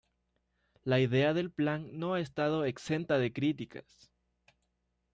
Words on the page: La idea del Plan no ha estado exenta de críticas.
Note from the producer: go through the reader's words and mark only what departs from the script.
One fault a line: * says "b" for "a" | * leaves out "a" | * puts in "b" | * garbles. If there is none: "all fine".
all fine